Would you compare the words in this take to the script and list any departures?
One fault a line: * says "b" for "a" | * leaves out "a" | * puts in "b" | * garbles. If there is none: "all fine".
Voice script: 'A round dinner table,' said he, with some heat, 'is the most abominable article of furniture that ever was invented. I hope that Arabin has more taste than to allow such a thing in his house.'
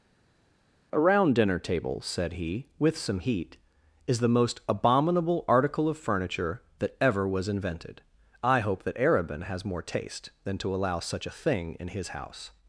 all fine